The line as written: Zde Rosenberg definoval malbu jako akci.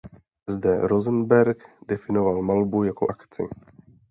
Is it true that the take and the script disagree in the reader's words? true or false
false